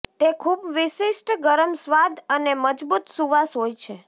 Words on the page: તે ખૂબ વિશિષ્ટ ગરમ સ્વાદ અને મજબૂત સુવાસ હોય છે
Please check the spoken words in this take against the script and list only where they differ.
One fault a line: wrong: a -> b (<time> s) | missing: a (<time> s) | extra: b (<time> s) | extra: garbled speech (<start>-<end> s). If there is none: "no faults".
no faults